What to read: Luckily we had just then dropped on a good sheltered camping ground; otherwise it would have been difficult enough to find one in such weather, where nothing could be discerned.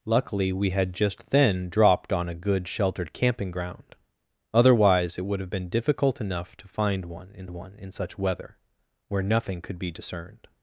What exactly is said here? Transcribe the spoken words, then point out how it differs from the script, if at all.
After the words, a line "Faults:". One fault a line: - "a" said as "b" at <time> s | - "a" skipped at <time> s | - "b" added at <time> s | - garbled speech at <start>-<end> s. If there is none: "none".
Luckily we had just then dropped on a good sheltered camping ground; otherwise it would have been difficult enough to find one in one in such weather, where nothing could be discerned.
Faults:
- "one in" added at 7.5 s